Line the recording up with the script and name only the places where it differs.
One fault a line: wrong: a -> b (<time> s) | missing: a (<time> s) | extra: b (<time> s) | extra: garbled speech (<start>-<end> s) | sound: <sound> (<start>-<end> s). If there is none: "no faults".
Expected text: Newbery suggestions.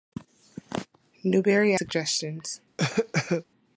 sound: cough (2.8-3.4 s)